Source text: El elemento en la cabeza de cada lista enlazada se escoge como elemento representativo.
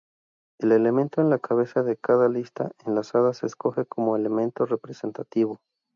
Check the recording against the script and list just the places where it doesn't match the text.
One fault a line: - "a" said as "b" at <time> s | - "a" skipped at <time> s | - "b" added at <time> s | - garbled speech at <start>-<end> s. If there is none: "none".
none